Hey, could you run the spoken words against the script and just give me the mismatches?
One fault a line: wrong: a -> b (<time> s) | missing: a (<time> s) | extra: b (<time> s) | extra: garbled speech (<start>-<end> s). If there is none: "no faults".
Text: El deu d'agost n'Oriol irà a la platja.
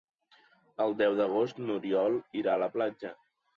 no faults